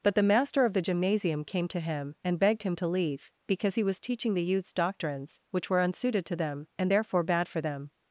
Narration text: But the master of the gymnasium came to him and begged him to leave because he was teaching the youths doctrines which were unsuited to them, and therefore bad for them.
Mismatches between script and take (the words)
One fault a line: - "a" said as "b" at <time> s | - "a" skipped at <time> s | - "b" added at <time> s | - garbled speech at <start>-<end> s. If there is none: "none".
none